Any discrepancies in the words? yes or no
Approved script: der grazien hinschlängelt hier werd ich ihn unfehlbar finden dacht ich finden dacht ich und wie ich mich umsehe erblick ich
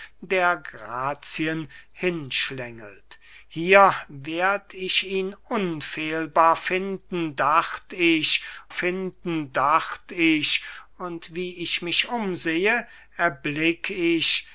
no